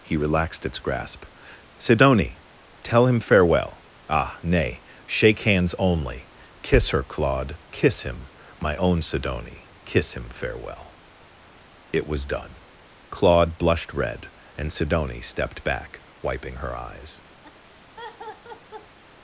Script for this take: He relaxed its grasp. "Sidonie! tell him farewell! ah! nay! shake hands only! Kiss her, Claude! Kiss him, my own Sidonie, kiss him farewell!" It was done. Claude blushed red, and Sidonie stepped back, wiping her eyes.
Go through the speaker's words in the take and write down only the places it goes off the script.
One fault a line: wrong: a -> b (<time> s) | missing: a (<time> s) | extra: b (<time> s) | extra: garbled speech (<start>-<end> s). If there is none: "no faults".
no faults